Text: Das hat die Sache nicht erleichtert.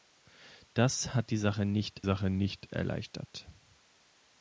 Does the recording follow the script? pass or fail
fail